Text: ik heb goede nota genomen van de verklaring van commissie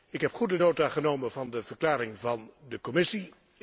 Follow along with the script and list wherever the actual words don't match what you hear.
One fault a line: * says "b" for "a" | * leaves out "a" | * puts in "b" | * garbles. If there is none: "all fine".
* puts in "de"